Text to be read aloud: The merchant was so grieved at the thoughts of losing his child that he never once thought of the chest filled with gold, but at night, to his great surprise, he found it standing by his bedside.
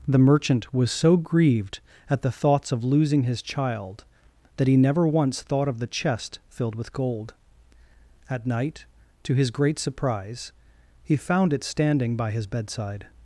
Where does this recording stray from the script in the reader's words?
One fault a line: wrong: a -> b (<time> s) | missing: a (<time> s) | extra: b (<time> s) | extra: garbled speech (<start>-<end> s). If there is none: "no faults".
missing: but (7.3 s)